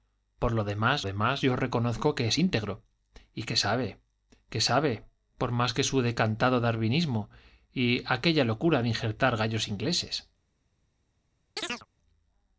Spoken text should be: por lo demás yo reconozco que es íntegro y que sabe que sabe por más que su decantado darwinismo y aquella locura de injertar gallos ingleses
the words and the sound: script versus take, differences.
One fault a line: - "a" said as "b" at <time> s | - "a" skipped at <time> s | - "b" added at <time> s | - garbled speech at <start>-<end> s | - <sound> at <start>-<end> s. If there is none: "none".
- "demás" added at 1.0 s
- chirp at 11.6-11.9 s